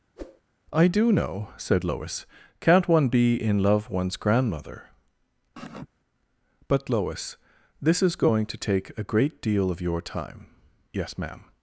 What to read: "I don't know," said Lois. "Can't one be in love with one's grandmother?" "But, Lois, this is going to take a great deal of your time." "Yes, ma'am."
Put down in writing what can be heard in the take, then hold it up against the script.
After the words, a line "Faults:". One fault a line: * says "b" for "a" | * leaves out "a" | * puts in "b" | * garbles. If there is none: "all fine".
"I do know," said Lois. "Can't one be in love one's grandmother?" "But, Lois, this is going to take a great deal of your time." "Yes, ma'am."
Faults:
* says "do" for "don't"
* leaves out "with"